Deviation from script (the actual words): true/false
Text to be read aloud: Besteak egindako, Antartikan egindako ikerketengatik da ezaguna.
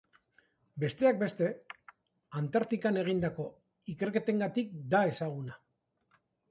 true